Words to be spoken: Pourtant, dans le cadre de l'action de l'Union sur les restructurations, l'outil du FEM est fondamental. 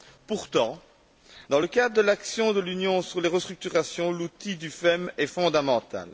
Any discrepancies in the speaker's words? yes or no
no